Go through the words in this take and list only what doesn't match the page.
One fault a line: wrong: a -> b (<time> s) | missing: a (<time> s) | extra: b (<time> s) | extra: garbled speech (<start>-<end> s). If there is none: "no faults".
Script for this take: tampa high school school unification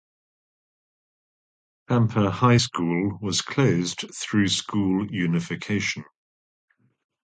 extra: was closed through (3.2 s)